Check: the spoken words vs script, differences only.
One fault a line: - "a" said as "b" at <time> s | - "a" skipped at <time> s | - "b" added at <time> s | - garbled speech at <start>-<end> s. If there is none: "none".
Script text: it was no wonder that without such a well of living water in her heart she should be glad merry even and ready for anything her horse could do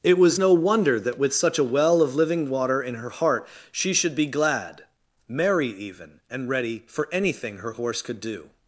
- "without" said as "with" at 1.2 s